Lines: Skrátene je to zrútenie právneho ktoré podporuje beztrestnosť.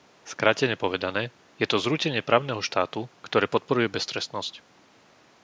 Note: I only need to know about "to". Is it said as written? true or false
true